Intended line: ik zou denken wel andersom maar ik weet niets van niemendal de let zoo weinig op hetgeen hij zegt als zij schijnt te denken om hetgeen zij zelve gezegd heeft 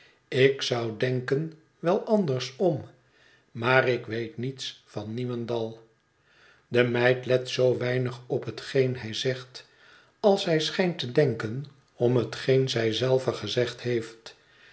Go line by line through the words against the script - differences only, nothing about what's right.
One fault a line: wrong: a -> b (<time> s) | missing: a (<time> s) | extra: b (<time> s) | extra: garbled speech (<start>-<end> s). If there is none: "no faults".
extra: meid (6.8 s)